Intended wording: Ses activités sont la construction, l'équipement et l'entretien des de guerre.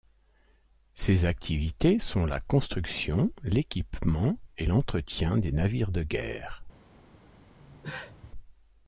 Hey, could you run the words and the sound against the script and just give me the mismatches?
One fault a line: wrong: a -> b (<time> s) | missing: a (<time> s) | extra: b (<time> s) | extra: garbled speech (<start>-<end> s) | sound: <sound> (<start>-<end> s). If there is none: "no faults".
extra: navires (5.5 s)
sound: cough (7.6-8.3 s)